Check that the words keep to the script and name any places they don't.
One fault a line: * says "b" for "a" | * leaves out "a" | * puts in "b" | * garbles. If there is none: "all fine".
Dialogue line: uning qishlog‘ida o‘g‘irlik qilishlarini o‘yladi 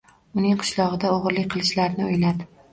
all fine